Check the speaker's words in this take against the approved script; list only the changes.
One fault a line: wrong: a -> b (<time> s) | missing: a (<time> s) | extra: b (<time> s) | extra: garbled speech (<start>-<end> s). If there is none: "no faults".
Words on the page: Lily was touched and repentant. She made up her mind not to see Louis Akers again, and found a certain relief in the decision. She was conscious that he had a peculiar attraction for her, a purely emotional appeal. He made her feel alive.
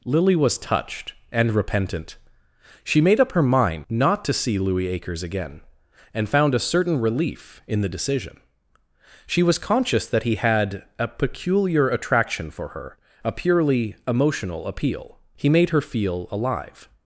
no faults